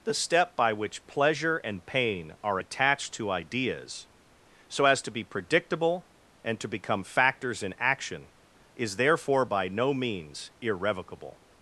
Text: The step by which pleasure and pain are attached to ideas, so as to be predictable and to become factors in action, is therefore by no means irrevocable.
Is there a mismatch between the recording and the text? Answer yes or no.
no